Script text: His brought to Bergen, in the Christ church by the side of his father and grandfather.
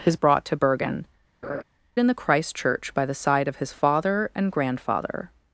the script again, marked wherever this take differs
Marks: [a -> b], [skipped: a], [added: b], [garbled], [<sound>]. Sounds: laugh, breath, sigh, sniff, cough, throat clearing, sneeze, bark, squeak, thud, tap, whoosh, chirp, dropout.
His brought to Bergen, [laugh] in the Christ church by the side of his father and grandfather.